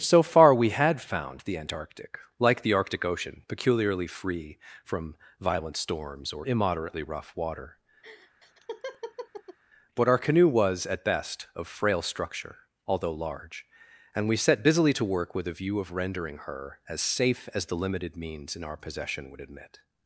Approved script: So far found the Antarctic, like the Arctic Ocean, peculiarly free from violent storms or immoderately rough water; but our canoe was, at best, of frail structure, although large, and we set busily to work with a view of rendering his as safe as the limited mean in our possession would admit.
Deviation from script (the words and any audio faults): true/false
true